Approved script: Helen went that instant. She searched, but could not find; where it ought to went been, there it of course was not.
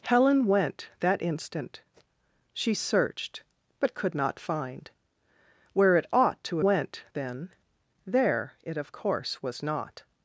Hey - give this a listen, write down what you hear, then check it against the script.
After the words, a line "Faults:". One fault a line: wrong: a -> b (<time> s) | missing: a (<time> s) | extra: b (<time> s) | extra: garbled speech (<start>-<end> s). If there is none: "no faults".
Helen went that instant. She searched, but could not find; where it ought to went been, there it of course was not.
Faults:
no faults